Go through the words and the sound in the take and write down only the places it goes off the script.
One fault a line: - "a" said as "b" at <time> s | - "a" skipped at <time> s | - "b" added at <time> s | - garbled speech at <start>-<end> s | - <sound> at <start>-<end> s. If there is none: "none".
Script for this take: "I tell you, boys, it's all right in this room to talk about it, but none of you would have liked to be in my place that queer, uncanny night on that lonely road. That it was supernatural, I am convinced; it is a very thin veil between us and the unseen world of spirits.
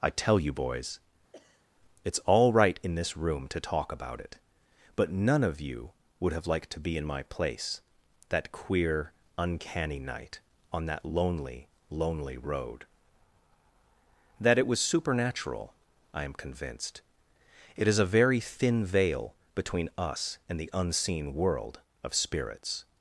- sneeze at 1.3-1.7 s
- "lonely" added at 11.9 s